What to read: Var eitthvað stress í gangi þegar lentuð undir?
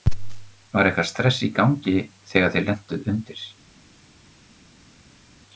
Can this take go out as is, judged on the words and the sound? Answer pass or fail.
fail